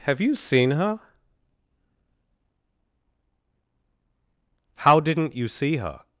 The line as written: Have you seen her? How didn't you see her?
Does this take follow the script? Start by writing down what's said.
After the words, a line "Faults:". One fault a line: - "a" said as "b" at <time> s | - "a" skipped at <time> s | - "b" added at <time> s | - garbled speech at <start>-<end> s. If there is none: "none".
Have you seen her? How didn't you see her?
Faults:
none